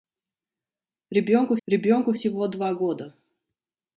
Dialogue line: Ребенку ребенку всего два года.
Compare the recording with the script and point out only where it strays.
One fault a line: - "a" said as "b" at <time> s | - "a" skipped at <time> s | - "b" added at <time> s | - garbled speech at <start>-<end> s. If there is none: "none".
none